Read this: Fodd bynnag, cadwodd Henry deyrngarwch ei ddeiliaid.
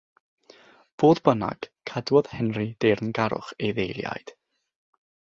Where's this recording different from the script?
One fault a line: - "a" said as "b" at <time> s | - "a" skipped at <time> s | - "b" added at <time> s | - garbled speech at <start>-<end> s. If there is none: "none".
none